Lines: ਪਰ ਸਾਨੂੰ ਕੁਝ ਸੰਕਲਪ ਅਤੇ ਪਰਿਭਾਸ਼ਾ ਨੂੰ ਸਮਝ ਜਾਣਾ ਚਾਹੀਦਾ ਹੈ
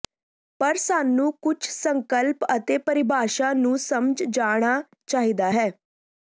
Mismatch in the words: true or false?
false